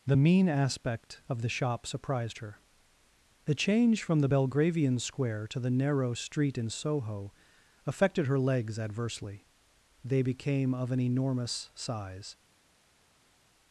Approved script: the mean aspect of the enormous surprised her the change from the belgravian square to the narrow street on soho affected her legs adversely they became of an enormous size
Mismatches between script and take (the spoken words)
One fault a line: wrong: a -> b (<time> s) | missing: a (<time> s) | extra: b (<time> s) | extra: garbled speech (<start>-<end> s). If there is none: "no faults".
wrong: enormous -> shop (1.5 s)
wrong: on -> in (6.6 s)